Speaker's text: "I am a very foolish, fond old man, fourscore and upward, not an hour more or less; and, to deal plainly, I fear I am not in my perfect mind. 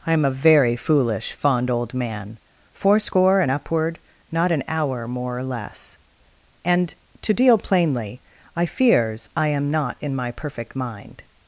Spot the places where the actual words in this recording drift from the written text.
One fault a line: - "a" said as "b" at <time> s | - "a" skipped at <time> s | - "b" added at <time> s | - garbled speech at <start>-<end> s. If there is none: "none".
- "fear" said as "fears" at 8.6 s